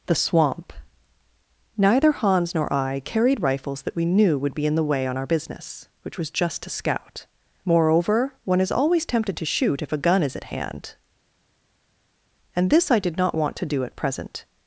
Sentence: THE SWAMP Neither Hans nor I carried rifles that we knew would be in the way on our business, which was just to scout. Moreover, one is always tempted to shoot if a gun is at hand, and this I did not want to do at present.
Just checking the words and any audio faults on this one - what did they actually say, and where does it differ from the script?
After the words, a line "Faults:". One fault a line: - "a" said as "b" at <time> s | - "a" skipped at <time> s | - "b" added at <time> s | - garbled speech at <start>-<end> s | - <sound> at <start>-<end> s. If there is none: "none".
THE SWAMP Neither Hans nor I carried rifles that we knew would be in the way on our business, which was just to scout. Moreover, one is always tempted to shoot if a gun is at hand, and this I did not want to do at present.
Faults:
none